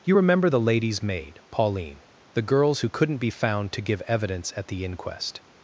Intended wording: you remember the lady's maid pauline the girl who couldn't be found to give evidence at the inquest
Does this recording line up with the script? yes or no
no